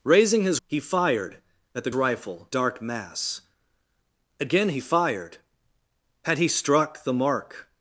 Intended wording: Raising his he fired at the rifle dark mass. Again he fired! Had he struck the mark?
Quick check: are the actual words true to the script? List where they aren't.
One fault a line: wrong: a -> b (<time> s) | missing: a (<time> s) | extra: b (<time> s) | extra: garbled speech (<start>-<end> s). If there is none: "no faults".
no faults